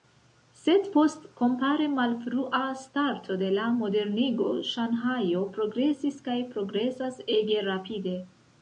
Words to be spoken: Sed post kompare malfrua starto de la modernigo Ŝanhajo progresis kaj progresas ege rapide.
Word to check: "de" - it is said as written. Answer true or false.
true